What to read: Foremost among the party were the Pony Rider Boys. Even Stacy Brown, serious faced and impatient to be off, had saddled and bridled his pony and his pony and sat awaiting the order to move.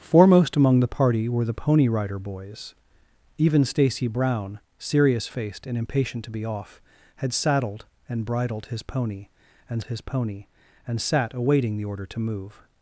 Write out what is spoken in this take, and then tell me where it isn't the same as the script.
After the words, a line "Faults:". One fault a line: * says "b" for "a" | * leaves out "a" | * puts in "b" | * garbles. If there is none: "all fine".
Foremost among the party were the Pony Rider Boys. Even Stacy Brown, serious faced and impatient to be off, had saddled and bridled his pony and his pony and sat awaiting the order to move.
Faults:
all fine